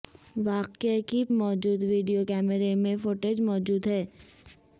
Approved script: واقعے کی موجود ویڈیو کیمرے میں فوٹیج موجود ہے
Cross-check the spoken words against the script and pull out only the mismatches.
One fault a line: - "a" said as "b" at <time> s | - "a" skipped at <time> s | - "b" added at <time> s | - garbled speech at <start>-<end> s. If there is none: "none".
none